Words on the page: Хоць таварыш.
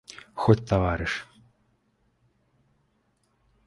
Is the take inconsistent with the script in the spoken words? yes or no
no